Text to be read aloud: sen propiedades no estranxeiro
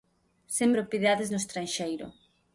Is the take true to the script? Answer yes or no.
yes